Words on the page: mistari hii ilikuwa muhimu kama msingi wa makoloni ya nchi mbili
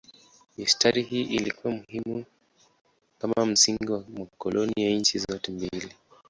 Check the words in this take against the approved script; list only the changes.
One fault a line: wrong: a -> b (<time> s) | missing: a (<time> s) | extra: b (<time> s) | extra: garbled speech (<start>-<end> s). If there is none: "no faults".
extra: zote (5.2 s)